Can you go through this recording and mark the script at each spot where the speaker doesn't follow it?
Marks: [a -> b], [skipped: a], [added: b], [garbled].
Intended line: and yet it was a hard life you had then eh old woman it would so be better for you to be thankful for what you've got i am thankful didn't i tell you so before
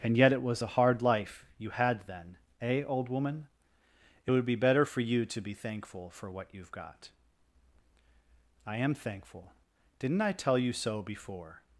and yet it was a hard life you had then eh old woman it would [skipped: so] be better for you to be thankful for what you've got i am thankful didn't i tell you so before